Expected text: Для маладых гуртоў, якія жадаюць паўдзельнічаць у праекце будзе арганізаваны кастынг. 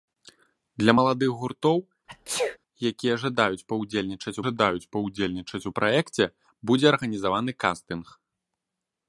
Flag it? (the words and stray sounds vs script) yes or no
yes